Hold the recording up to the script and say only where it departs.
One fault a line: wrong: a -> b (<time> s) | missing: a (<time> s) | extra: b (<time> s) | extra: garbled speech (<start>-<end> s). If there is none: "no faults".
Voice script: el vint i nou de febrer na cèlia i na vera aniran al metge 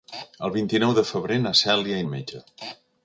missing: na vera aniran (2.1 s)